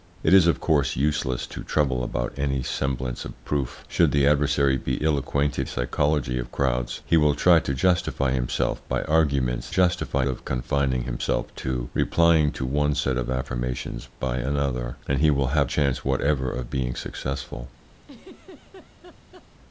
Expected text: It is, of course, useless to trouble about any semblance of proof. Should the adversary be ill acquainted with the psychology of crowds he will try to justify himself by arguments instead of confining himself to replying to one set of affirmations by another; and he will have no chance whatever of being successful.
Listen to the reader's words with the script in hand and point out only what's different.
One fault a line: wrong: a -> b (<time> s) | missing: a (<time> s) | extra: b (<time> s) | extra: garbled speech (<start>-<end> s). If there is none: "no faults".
missing: with the (5.7 s)
wrong: instead -> justify (9.7 s)
missing: no (15.7 s)